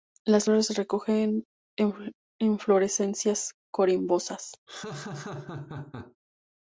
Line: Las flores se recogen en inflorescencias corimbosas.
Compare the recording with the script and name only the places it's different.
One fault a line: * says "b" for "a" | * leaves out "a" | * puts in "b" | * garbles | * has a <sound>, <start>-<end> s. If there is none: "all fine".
* has a laugh, 4.7-6.2 s